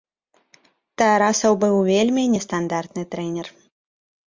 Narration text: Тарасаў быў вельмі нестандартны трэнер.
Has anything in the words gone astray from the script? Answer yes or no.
no